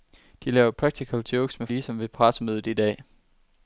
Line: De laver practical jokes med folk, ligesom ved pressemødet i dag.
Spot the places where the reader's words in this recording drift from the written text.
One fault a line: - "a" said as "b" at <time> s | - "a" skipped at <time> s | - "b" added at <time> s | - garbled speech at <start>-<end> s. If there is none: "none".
- "folk" skipped at 1.7 s